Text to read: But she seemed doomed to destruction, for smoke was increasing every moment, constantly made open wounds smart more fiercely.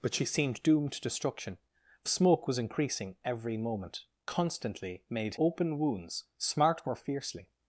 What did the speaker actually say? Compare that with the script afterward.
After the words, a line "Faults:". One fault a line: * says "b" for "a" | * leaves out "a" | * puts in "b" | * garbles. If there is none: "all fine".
But she seemed doomed to destruction, for smoke was increasing every moment, constantly made open wounds smart more fiercely.
Faults:
all fine